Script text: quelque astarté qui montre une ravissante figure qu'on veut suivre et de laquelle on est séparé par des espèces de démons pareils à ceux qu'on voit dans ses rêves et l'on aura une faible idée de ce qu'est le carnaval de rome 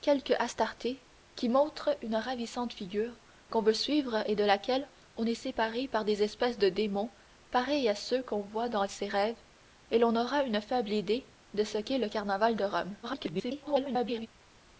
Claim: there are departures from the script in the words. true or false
true